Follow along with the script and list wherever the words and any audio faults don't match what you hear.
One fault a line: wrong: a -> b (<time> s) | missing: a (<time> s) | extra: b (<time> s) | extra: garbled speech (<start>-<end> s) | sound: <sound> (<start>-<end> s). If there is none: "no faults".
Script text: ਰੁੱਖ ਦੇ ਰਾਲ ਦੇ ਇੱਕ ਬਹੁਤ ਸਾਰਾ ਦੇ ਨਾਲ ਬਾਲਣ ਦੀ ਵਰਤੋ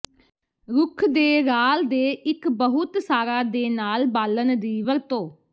no faults